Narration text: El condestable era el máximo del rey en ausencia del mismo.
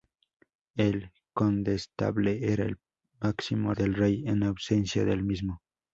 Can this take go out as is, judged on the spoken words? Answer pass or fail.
pass